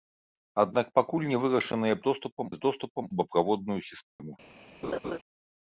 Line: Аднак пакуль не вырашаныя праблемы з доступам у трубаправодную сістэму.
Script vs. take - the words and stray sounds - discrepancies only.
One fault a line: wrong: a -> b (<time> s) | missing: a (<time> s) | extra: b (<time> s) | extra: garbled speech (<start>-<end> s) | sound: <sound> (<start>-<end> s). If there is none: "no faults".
wrong: праблемы -> доступам (2.1 s)
missing: у (3.0 s)
sound: dropout (4.1-4.2 s)
sound: laugh (4.8-5.2 s)